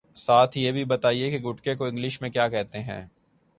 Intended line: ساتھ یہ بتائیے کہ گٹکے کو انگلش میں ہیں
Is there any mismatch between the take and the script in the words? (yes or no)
yes